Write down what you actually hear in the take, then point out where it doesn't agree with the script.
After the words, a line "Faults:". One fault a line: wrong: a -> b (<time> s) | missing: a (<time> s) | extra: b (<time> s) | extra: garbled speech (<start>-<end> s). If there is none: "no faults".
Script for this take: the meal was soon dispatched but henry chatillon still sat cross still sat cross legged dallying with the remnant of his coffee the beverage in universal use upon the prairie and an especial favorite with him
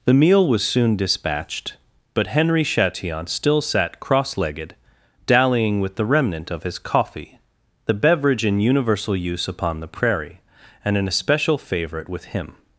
the meal was soon dispatched but henry chatillon still sat cross legged dallying with the remnant of his coffee the beverage in universal use upon the prairie and an especial favorite with him
Faults:
missing: still sat cross (4.3 s)